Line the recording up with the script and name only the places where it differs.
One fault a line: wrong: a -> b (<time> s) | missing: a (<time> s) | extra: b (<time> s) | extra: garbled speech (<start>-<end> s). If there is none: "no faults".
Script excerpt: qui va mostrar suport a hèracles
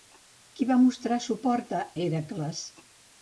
no faults